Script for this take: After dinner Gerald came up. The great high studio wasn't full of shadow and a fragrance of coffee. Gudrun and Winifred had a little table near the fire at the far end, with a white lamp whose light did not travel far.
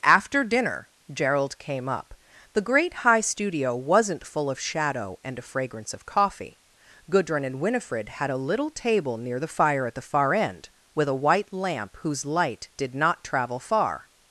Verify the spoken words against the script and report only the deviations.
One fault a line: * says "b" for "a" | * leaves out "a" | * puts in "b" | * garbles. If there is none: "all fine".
all fine